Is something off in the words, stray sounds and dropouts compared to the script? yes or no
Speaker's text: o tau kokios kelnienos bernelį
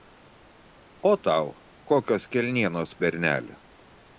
no